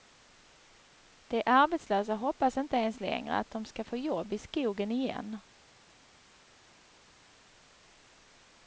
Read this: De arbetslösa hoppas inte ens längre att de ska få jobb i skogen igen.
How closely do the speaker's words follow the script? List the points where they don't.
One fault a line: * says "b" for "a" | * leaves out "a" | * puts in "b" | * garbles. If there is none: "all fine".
all fine